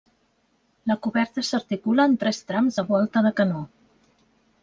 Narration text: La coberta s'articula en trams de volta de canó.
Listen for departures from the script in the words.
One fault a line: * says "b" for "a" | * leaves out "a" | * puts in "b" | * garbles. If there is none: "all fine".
* puts in "tres"